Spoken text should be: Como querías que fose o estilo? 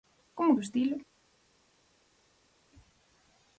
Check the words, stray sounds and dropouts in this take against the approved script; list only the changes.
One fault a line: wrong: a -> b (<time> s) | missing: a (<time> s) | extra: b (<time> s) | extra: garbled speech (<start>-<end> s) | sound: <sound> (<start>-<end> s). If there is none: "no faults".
missing: querías que fose (0.6 s)